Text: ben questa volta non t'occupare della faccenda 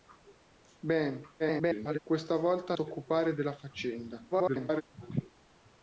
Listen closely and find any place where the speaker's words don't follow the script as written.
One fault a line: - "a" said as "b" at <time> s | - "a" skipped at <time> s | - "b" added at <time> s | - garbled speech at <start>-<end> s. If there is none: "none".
- garbled speech at 1.4-2.0 s
- "non" skipped at 2.7 s
- garbled speech at 4.3-4.8 s